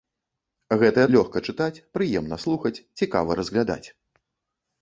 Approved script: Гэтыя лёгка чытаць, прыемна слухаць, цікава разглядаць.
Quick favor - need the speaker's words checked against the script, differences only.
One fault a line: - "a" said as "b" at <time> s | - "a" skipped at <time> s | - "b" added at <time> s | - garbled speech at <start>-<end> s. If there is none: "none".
none